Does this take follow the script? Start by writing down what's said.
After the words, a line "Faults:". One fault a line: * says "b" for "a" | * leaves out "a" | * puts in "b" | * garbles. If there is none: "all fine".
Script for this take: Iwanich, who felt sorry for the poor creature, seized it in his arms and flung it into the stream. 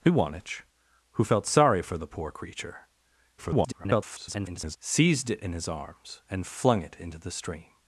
Iwanich, who felt sorry for the poor creature, [garbled] seized it in his arms and flung it into the stream.
Faults:
* garbles